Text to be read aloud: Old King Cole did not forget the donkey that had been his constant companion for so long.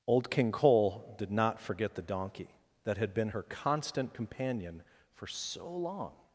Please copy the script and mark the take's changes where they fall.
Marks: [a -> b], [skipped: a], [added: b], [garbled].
Old King Cole did not forget the donkey that had been [his -> her] constant companion for so long.